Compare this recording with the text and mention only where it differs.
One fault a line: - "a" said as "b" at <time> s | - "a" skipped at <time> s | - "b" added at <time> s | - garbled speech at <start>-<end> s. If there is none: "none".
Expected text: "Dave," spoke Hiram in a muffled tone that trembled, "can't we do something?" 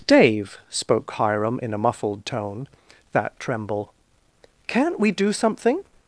- "trembled" said as "tremble" at 3.4 s